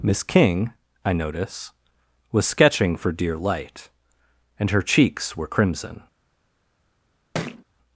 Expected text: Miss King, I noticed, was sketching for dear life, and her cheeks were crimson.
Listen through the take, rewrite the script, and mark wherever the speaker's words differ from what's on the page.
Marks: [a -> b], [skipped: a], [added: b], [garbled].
Miss King, I [noticed, -> notice] was sketching for dear [life, -> light] and her cheeks were crimson.